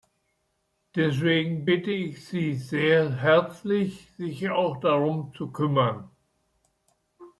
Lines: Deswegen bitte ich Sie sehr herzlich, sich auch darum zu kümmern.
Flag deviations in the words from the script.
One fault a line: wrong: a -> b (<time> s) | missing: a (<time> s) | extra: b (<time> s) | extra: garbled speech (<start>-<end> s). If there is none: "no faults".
no faults